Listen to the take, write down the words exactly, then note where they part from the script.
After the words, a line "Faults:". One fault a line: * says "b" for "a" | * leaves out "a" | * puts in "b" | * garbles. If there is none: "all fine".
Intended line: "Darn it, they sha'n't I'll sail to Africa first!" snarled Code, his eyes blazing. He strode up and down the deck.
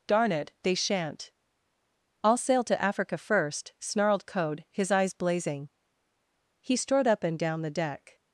"Darn it, they sha'n't I'll sail to Africa first!" snarled Code, his eyes blazing. He strode up and down the deck.
Faults:
all fine